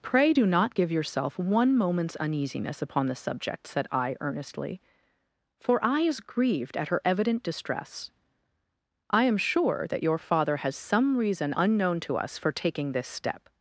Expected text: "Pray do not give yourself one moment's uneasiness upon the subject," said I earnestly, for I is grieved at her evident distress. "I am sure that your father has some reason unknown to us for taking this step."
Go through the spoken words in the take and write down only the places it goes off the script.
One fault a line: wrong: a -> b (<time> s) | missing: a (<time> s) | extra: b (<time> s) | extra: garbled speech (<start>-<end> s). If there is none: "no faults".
no faults